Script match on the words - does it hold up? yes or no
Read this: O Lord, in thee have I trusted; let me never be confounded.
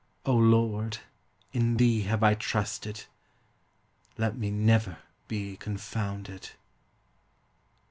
yes